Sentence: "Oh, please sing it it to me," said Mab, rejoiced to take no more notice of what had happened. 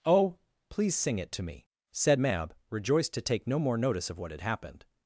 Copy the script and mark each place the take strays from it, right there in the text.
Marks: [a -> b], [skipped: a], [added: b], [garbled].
"Oh, please sing it [skipped: it] to me," said Mab, rejoiced to take no more notice of what had happened.